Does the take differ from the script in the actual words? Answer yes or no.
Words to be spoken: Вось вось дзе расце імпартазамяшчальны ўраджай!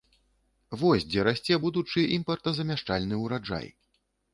yes